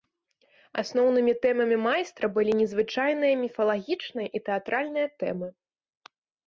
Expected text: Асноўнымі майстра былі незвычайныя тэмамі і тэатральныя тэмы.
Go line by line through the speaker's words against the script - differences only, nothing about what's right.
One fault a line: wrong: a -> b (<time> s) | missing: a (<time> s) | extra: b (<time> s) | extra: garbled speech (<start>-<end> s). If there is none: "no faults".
extra: тэмамі (1.4 s)
wrong: тэмамі -> міфалагічныя (3.5 s)